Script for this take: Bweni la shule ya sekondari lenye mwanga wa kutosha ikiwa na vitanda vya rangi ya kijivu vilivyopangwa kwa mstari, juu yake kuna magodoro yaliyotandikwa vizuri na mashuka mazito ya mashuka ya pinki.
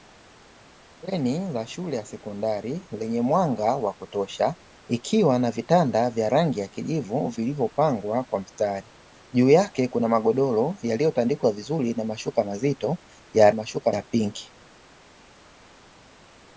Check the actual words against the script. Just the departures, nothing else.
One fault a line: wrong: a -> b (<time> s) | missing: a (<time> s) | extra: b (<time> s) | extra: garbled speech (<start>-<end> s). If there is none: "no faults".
no faults